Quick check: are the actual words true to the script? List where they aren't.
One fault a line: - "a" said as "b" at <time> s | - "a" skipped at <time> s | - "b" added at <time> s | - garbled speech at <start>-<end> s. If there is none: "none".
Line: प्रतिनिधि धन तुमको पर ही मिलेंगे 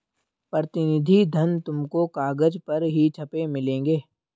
- "कागज" added at 2.1 s
- "छपे" added at 3.2 s